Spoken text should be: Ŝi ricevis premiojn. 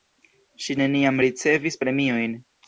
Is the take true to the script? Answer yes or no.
no